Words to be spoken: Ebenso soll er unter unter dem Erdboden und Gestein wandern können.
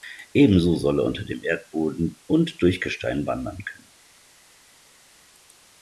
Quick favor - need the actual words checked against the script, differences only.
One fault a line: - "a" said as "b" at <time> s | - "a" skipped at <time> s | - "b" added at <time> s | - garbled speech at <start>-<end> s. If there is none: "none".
- "unter" skipped at 1.3 s
- "durch" added at 2.6 s